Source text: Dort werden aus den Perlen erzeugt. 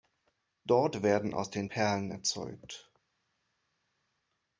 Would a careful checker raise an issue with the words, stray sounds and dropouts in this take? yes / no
no